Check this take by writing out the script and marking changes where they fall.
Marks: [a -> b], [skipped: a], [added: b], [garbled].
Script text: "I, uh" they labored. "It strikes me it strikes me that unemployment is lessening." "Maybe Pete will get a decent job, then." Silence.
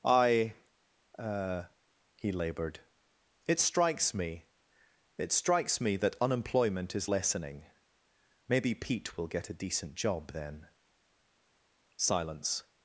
"I, uh" [they -> he] labored. "It strikes me it strikes me that unemployment is lessening." "Maybe Pete will get a decent job, then." Silence.